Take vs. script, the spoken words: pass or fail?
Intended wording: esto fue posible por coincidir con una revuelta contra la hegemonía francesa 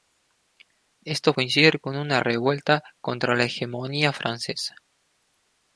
fail